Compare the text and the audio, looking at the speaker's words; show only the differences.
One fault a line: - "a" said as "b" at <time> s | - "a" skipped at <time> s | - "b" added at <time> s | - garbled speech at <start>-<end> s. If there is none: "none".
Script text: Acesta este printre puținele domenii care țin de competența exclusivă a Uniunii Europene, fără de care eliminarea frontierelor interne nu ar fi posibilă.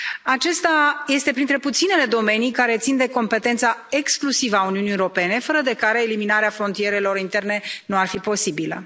none